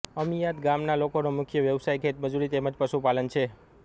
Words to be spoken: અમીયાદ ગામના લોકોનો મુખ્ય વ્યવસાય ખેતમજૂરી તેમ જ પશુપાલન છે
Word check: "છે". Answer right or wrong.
right